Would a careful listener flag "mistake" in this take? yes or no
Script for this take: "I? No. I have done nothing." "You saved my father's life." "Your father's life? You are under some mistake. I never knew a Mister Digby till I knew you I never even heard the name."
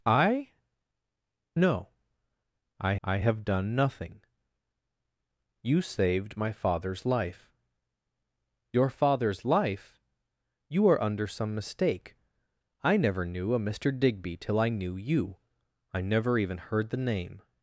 no